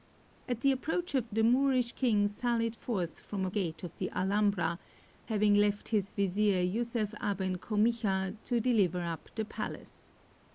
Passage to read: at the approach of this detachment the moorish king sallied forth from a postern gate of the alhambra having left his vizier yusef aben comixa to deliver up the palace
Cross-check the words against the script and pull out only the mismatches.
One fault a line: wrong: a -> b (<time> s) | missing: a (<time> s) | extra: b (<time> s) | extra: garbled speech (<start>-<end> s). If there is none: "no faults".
missing: this detachment (1.3 s)
missing: postern (3.5 s)